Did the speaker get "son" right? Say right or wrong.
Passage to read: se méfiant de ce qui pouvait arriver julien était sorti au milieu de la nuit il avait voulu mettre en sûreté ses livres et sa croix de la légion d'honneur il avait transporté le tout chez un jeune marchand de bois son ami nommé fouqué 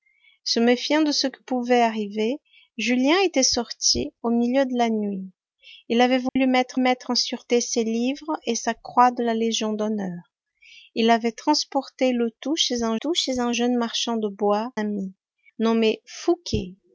wrong